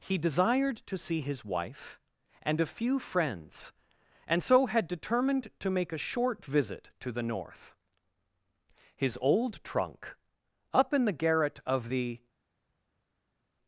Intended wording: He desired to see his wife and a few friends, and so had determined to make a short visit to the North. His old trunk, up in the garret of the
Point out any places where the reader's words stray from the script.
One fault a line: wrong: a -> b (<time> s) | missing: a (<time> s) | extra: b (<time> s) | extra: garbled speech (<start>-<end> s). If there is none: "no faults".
no faults